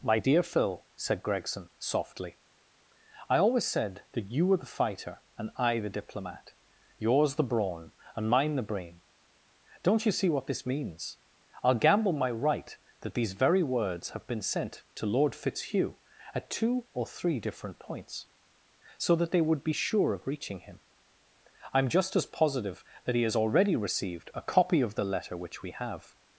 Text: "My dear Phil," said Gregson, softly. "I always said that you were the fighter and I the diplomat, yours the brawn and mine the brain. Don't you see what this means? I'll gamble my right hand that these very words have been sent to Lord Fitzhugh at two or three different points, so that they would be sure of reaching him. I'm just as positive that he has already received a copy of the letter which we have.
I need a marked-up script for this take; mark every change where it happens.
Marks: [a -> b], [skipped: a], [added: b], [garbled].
"My dear Phil," said Gregson, softly. "I always said that you were the fighter and I the diplomat, yours the brawn and mine the brain. Don't you see what this means? I'll gamble my right [skipped: hand] that these very words have been sent to Lord Fitzhugh at two or three different points, so that they would be sure of reaching him. I'm just as positive that he has already received a copy of the letter which we have.